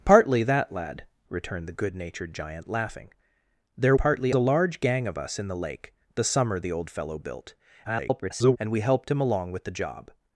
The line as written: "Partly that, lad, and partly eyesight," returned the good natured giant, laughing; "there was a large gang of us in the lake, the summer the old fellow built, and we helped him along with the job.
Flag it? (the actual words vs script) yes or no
yes